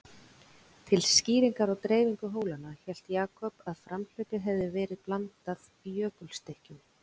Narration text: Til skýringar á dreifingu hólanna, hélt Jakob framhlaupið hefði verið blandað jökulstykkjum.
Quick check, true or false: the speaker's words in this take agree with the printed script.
false